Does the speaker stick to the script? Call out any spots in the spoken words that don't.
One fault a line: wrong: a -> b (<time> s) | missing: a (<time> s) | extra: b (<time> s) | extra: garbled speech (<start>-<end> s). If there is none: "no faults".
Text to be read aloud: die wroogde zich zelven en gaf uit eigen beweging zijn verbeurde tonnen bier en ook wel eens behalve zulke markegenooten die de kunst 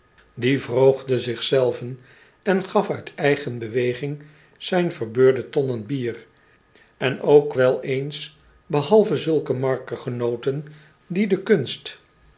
no faults